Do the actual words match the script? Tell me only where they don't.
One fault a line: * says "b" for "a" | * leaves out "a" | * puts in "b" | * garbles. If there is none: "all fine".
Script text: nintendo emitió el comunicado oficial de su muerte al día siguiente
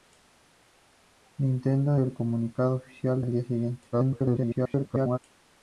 * leaves out "emitió"
* leaves out "de su muerte"
* garbles